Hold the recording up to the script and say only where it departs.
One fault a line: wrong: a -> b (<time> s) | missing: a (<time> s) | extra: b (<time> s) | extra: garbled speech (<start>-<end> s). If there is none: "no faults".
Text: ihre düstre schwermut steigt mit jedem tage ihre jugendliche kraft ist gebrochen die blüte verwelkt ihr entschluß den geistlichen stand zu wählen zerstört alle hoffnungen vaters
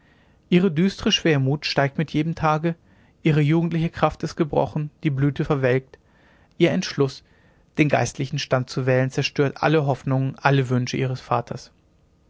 extra: alle wünsche ihres (10.4 s)